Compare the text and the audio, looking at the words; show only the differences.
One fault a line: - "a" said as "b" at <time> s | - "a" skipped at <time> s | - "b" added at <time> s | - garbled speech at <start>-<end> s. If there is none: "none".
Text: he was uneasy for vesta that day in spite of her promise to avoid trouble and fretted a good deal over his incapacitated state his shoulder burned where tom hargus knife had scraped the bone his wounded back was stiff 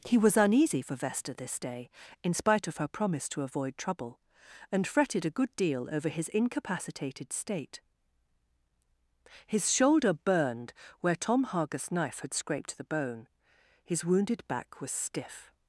- "that" said as "this" at 1.3 s